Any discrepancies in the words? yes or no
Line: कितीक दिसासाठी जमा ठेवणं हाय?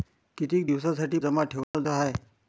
no